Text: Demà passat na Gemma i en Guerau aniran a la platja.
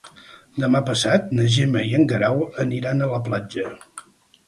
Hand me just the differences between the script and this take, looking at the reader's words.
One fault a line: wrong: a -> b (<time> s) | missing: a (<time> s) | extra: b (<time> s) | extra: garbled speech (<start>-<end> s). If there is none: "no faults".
no faults